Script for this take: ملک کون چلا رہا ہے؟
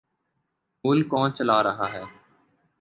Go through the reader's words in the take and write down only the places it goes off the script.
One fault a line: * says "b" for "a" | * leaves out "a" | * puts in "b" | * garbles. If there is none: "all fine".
all fine